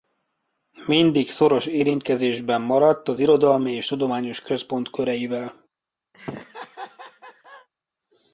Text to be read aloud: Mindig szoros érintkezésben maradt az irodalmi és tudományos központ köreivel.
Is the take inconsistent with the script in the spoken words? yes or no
no